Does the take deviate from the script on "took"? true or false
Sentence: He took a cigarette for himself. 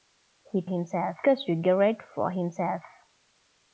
true